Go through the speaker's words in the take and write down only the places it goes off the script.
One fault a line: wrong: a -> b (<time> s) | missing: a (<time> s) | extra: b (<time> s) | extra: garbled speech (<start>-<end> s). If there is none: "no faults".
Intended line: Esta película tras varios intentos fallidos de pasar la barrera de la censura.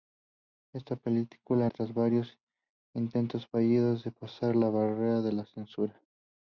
no faults